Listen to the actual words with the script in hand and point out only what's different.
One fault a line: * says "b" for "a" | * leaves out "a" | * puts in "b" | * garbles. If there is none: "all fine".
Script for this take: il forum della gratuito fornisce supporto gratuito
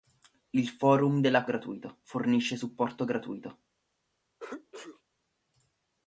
all fine